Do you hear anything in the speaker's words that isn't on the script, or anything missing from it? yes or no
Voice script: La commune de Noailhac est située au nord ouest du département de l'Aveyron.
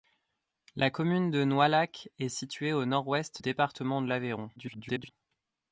yes